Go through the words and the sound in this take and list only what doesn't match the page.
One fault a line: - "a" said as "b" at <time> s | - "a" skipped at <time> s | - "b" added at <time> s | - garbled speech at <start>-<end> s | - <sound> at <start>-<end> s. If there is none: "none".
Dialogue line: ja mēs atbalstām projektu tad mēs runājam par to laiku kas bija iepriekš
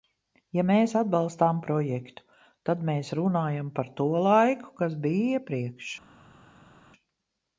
none